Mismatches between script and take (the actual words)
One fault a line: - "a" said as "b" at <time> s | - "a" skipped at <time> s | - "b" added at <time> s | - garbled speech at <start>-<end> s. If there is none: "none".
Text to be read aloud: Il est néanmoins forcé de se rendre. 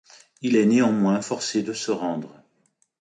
none